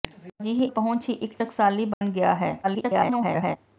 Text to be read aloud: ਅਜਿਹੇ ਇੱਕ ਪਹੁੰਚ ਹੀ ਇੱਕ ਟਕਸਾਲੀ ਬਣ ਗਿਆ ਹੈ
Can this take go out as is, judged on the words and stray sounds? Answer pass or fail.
fail